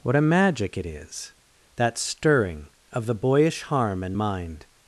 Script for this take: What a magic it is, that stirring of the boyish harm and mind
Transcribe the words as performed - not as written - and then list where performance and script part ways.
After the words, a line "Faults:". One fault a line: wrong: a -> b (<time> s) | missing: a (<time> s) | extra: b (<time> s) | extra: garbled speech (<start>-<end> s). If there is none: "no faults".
What a magic it is, that stirring of the boyish harm and mind
Faults:
no faults